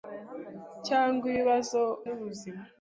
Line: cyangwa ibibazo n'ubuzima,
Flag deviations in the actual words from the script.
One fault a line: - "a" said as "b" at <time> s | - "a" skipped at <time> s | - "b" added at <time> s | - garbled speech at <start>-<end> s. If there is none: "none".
none